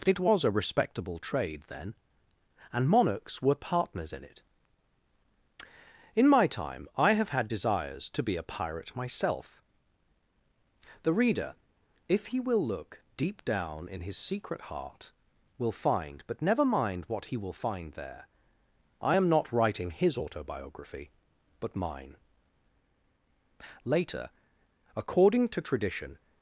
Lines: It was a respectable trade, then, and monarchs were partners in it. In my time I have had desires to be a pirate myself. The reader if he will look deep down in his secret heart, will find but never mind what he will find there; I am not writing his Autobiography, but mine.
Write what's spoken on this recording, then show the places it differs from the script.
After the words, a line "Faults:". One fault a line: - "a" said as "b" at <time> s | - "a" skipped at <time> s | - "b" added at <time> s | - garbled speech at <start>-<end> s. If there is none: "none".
It was a respectable trade, then, and monarchs were partners in it. In my time I have had desires to be a pirate myself. The reader if he will look deep down in his secret heart, will find but never mind what he will find there; I am not writing his Autobiography, but mine. Later, according to tradition
Faults:
- "Later according to tradition" added at 23.8 s